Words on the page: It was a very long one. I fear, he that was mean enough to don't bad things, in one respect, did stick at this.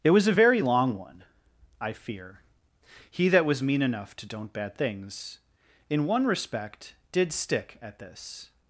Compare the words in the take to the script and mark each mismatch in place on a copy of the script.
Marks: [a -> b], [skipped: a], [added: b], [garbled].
It was a very long one. I fear, he that was mean enough to don't bad things, in one respect, did stick at this.